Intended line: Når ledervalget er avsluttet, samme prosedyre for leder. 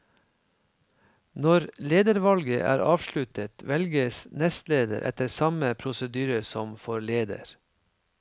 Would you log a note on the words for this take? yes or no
yes